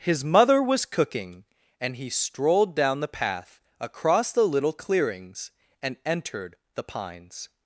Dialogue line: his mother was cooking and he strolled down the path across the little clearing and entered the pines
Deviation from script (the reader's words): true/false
true